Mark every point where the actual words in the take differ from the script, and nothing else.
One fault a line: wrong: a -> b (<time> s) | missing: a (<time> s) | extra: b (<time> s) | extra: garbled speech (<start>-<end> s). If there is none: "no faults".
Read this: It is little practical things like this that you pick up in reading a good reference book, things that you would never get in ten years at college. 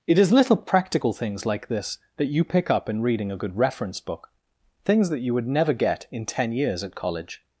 no faults